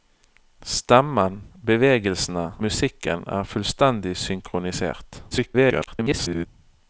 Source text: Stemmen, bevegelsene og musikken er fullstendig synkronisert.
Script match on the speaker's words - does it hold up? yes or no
no